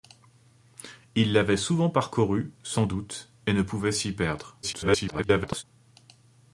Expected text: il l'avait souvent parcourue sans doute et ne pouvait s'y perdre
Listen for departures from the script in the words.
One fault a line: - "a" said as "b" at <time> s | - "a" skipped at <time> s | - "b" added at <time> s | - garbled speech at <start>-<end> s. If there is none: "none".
- garbled speech at 4.6-5.6 s